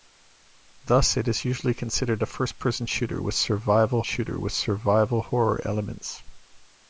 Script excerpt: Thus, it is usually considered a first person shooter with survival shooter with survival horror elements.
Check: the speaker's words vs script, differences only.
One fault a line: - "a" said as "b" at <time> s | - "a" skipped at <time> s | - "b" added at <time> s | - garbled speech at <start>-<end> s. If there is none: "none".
none